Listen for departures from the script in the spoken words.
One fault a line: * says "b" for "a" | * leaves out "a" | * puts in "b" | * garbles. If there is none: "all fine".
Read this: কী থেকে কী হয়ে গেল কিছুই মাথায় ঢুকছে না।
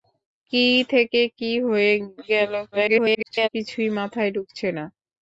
* garbles